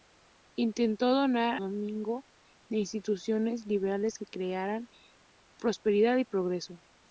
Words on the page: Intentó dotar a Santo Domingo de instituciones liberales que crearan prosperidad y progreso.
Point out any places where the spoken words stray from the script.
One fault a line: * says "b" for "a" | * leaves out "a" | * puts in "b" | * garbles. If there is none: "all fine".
* leaves out "a Santo"